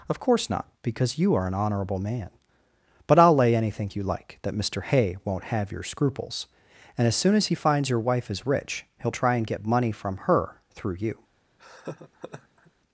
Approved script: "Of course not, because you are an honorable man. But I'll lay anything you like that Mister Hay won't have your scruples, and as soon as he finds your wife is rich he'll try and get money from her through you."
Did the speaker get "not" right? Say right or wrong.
right